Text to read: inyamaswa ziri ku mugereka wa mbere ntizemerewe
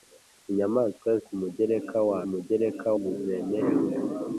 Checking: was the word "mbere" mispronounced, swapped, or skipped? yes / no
yes